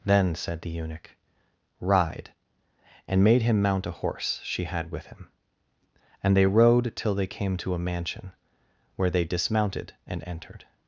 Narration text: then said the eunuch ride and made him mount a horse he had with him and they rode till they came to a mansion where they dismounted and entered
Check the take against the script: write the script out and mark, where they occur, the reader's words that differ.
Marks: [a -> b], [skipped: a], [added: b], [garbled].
then said the eunuch ride and made him mount a horse [he -> she] had with him and they rode till they came to a mansion where they dismounted and entered